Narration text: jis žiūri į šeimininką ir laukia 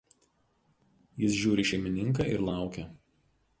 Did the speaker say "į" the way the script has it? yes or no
yes